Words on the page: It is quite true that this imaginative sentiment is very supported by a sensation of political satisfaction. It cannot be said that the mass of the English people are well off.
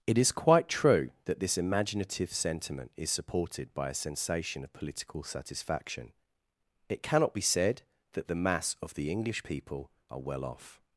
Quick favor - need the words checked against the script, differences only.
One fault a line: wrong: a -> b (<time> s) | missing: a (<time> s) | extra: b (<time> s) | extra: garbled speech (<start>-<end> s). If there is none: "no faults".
missing: very (3.1 s)